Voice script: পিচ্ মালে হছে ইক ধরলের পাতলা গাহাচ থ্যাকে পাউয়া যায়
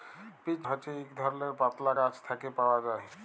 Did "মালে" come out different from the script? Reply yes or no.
yes